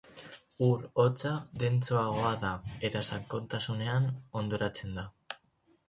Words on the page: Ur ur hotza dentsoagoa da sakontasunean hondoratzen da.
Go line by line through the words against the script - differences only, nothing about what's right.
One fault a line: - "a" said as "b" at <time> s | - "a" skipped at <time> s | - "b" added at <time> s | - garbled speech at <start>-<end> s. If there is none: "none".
- "ur" skipped at 0.8 s
- "eta" added at 2.9 s